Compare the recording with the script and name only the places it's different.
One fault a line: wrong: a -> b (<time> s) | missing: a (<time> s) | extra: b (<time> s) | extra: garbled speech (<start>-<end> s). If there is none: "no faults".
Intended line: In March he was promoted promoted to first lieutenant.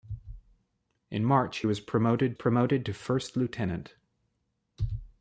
no faults